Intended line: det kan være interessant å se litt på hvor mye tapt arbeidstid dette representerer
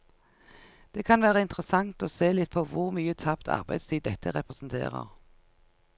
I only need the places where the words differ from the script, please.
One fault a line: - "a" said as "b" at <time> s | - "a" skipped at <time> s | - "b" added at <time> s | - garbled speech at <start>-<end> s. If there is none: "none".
none